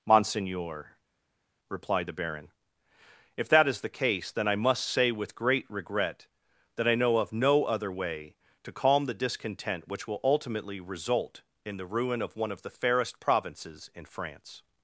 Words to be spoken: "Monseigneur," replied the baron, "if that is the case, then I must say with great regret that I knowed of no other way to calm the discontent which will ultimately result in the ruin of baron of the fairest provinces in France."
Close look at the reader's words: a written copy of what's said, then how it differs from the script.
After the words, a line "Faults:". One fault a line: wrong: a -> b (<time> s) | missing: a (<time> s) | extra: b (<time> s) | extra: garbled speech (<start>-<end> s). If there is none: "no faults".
"Monseigneur," replied the baron, "if that is the case, then I must say with great regret that I know of no other way to calm the discontent which will ultimately result in the ruin of one of the fairest provinces in France."
Faults:
wrong: knowed -> know (6.9 s)
wrong: baron -> one (12.4 s)